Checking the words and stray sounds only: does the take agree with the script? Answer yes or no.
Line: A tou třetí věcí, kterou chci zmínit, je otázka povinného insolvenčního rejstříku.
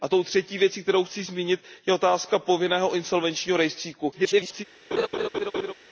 no